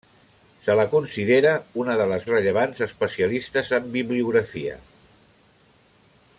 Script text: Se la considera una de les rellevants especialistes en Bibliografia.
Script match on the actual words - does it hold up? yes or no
yes